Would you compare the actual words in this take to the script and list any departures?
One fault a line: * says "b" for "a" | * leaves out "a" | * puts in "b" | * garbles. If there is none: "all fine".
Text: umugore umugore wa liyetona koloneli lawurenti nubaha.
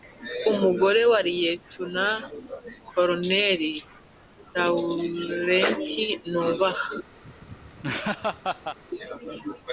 * leaves out "umugore"